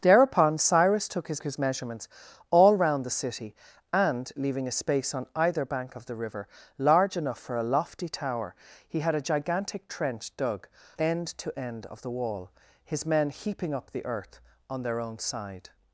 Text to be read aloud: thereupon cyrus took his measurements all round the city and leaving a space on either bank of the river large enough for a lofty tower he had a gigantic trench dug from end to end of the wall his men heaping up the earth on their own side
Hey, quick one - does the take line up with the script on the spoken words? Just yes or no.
no